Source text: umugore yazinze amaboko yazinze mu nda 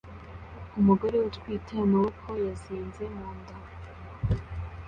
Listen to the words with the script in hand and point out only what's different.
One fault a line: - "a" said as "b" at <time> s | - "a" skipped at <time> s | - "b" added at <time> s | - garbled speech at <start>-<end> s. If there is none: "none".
- "yazinze" said as "utwite" at 1.3 s